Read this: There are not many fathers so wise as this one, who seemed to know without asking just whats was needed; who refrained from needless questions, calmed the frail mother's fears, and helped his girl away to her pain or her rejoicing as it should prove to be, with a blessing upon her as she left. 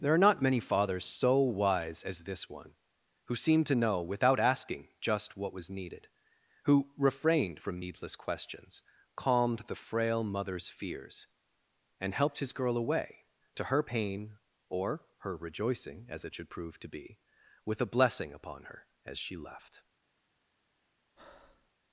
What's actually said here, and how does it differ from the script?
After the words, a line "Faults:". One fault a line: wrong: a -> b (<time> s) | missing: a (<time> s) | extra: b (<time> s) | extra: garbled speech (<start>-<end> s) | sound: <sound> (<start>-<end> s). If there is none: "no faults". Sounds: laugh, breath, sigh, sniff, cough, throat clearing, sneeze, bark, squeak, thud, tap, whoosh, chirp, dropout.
There are not many fathers so wise as this one, who seemed to know without asking just what was needed; who refrained from needless questions, calmed the frail mother's fears, and helped his girl away to her pain or her rejoicing as it should prove to be, with a blessing upon her as she left.
Faults:
wrong: whats -> what (5.3 s)
sound: breath (21.2-21.7 s)